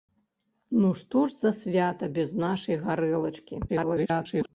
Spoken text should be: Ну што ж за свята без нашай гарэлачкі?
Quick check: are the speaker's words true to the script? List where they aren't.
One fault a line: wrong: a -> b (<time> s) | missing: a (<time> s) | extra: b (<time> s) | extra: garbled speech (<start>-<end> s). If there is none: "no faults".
extra: garbled speech (3.7-4.5 s)